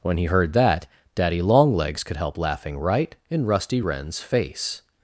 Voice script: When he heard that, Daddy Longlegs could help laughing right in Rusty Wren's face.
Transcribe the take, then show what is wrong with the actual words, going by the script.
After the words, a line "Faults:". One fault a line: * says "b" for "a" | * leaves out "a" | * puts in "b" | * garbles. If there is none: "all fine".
When he heard that, Daddy Longlegs could help laughing right in Rusty Wren's face.
Faults:
all fine